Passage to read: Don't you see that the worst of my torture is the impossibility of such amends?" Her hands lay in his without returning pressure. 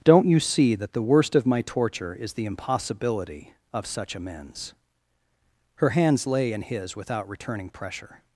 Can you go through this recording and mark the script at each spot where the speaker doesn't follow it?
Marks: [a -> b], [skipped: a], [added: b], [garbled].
Don't you see that the worst of my torture is the impossibility of such amends?" Her hands lay in his without returning pressure.